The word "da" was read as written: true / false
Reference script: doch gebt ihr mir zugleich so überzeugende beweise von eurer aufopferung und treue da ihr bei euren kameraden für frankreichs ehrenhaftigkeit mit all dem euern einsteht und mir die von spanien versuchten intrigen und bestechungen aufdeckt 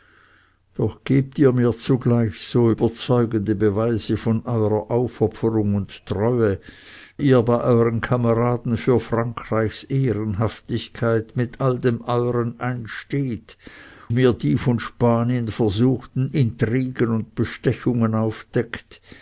false